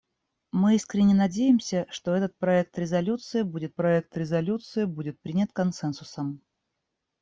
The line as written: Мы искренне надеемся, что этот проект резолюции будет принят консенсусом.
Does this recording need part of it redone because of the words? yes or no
yes